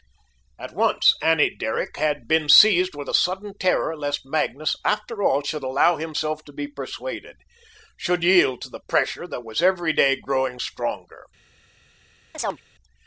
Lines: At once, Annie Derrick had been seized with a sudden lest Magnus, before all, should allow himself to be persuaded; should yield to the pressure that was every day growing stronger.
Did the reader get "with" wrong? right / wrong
right